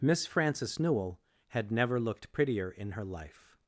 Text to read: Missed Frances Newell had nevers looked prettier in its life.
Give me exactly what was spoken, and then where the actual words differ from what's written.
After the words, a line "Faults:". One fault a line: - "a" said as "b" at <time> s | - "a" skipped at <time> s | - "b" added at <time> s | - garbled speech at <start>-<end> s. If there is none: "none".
Miss Frances Newell had never looked prettier in her life.
Faults:
- "Missed" said as "Miss" at 0.0 s
- "nevers" said as "never" at 1.7 s
- "its" said as "her" at 2.9 s